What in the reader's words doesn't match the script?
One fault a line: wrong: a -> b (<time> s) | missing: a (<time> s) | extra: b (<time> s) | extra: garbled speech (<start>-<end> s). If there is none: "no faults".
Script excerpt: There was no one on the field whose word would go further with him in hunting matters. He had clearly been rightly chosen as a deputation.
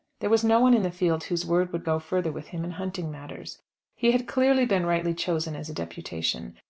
wrong: on -> in (0.7 s)